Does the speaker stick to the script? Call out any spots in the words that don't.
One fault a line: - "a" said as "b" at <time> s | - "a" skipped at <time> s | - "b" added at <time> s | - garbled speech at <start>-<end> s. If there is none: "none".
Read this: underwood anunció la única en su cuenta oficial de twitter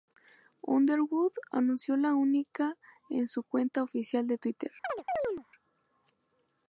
none